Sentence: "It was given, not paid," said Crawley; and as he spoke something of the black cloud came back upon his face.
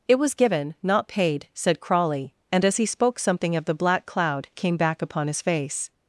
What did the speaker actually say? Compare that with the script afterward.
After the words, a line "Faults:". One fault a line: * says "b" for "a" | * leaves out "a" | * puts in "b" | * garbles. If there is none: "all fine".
"It was given, not paid," said Crawley; and as he spoke something of the black cloud came back upon his face.
Faults:
all fine